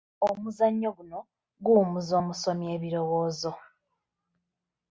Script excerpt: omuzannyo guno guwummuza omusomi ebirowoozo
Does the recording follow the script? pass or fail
pass